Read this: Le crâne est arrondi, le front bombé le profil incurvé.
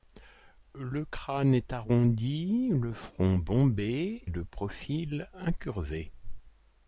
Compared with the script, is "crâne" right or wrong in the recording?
right